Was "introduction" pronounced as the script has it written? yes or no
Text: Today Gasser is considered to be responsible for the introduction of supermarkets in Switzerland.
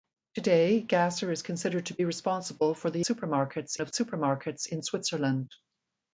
no